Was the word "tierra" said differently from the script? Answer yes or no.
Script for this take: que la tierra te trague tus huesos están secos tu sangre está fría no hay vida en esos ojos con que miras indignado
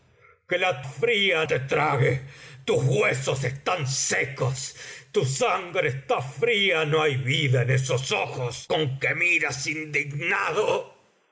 yes